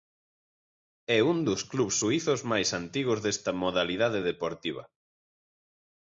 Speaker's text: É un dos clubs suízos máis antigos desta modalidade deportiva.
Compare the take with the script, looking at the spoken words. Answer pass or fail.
pass